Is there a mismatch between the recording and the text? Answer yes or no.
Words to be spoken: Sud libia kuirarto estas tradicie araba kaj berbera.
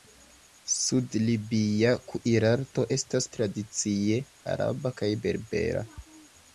no